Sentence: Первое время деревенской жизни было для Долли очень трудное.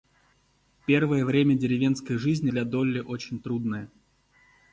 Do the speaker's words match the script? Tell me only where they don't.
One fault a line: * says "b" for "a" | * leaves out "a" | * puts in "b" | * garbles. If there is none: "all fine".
* leaves out "было"